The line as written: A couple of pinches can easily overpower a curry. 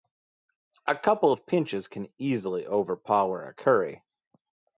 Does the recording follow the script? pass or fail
pass